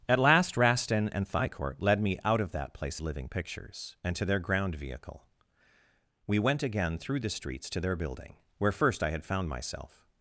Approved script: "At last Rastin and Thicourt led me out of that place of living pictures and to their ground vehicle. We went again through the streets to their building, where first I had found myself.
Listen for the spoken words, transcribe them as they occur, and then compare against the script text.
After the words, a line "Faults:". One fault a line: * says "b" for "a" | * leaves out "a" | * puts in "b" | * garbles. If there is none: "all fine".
"At last Rastin and Thicourt led me out of that place living pictures and to their ground vehicle. We went again through the streets to their building, where first I had found myself.
Faults:
* leaves out "of"